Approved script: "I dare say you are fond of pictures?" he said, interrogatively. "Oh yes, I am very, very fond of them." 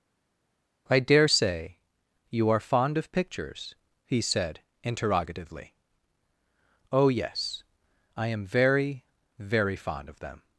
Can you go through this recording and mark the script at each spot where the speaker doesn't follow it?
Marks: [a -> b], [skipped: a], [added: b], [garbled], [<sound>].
"I dare say you are fond of pictures?" he said, interrogatively. "Oh yes, I am very, very fond of them."